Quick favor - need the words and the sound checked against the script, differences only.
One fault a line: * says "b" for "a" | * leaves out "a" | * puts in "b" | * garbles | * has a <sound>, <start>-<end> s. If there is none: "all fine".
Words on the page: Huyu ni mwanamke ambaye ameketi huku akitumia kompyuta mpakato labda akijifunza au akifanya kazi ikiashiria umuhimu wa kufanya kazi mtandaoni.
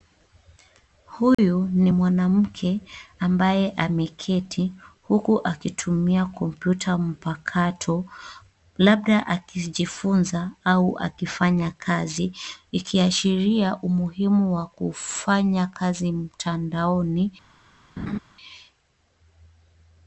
* has a dropout, 1.3-1.4 s
* has a laugh, 18.0-18.2 s